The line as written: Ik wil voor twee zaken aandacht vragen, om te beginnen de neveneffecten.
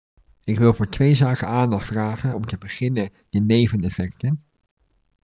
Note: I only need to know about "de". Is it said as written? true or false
true